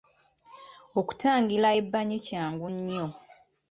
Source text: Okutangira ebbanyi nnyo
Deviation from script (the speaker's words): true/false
true